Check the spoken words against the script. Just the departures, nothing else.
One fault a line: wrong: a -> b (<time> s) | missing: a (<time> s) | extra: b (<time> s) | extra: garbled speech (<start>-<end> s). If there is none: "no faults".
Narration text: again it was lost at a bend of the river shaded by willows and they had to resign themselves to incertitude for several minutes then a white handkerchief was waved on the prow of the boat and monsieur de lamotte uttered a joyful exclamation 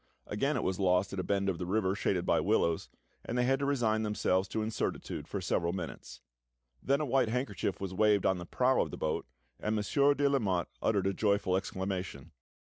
no faults